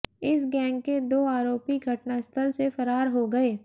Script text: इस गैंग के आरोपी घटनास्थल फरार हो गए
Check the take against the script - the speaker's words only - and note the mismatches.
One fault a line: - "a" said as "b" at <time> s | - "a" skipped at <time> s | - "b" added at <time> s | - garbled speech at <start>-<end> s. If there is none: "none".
- "दो" added at 1.1 s
- "से" added at 2.5 s